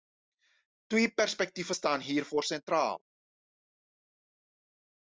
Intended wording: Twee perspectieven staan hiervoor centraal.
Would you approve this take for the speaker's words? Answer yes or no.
yes